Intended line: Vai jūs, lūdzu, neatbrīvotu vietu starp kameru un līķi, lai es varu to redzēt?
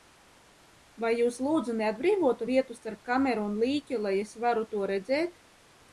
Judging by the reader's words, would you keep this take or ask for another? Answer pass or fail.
pass